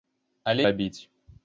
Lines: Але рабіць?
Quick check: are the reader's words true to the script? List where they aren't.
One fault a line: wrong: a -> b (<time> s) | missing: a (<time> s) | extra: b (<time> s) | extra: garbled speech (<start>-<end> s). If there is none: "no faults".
no faults